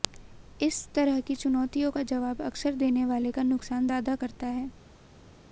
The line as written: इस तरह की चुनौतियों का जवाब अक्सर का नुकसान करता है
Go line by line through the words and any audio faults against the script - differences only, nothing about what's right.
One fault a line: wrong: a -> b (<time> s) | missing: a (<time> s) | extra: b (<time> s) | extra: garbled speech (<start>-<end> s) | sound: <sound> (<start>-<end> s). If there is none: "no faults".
extra: देने वाले (2.8 s)
extra: ज्यादा (3.9 s)